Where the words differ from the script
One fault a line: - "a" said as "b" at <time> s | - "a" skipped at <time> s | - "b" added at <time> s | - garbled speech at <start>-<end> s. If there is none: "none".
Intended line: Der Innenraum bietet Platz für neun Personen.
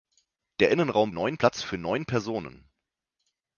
- "bietet" said as "neun" at 1.1 s